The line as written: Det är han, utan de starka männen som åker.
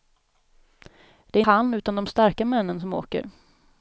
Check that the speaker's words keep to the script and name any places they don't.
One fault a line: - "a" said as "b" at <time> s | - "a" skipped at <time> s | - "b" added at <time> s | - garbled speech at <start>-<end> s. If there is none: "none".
none